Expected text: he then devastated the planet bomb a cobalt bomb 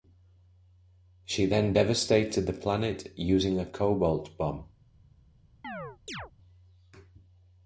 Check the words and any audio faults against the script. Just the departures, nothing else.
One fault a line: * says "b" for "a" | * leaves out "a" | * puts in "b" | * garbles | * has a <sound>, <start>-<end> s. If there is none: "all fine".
* says "she" for "he"
* says "using" for "bomb"
* has a chirp, 5.6-6.3 s